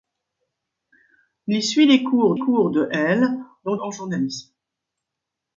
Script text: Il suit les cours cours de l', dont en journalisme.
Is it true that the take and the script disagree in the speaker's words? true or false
false